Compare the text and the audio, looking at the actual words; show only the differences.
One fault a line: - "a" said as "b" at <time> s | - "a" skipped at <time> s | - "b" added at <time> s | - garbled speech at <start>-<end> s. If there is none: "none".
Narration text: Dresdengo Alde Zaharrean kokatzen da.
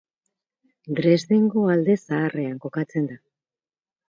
none